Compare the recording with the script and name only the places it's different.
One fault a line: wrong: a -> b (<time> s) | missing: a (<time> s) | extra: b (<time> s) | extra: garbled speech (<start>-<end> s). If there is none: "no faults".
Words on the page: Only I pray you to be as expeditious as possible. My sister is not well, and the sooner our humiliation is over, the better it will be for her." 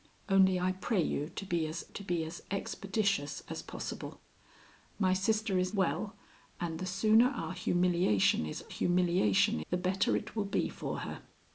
extra: to be as (1.9 s)
missing: not (5.7 s)
wrong: over -> humiliation (8.7 s)